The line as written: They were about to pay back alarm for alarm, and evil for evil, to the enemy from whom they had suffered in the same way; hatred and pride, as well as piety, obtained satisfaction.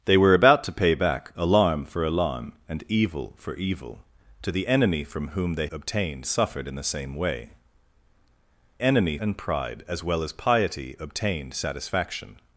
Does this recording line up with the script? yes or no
no